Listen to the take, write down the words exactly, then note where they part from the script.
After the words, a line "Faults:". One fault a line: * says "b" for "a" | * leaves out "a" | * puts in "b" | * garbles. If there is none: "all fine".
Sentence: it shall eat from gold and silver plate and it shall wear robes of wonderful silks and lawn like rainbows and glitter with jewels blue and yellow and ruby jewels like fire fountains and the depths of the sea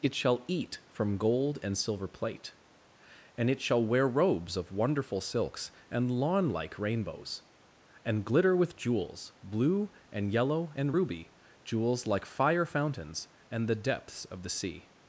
it shall eat from gold and silver plate and it shall wear robes of wonderful silks and lawn like rainbows and glitter with jewels blue and yellow and ruby jewels like fire fountains and the depths of the sea
Faults:
all fine